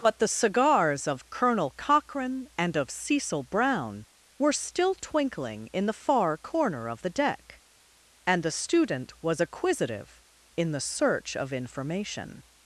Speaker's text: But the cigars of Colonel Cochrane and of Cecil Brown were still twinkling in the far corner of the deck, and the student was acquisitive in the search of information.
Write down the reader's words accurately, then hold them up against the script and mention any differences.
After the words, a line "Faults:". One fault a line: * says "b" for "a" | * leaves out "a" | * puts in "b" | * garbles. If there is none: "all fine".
But the cigars of Colonel Cochrane and of Cecil Brown were still twinkling in the far corner of the deck, and the student was acquisitive in the search of information.
Faults:
all fine